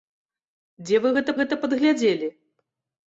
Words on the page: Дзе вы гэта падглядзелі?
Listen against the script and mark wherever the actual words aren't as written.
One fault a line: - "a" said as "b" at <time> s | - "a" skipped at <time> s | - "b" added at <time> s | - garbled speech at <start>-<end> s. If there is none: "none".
- "гэта" added at 1.4 s